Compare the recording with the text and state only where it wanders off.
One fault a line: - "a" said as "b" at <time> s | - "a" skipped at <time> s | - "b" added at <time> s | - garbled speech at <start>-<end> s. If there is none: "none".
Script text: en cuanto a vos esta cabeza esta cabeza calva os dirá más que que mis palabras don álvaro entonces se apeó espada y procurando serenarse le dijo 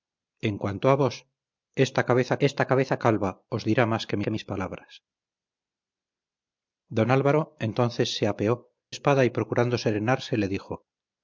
none